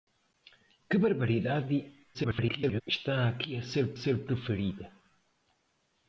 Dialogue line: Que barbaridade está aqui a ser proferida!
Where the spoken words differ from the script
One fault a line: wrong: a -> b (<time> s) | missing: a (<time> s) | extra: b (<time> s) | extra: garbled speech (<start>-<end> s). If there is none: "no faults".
extra: garbled speech (2.1-2.8 s)
extra: ser (3.9 s)